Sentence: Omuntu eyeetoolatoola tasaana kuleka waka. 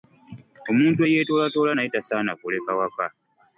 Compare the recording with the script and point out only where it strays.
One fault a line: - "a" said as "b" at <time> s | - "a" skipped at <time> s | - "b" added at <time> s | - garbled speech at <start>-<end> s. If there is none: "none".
- "naye" added at 1.7 s